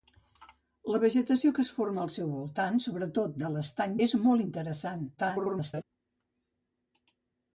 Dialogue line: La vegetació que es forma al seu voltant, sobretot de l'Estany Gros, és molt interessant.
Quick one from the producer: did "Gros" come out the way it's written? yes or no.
no